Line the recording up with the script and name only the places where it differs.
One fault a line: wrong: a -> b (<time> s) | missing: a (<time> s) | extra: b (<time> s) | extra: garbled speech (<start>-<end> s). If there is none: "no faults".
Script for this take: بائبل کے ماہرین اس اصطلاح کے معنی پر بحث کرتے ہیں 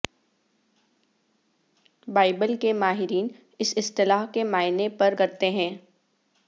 missing: بحث (5.2 s)